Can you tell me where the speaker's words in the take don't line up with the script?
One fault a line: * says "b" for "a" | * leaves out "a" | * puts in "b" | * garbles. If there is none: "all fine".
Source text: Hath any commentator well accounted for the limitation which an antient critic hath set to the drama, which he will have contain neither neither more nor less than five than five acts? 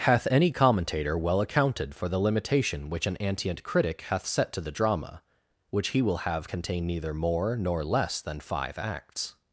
* leaves out "neither"
* leaves out "than five"